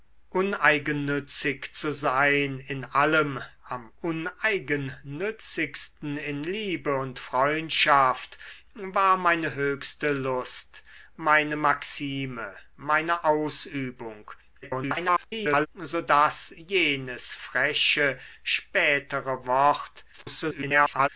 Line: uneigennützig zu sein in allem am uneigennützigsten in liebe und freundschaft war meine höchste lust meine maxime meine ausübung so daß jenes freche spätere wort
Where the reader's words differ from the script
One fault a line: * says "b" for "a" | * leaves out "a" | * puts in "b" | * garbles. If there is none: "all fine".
* garbles
* garbles